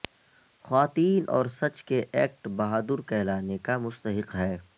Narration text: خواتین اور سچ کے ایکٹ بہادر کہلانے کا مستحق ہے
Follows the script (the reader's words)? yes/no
yes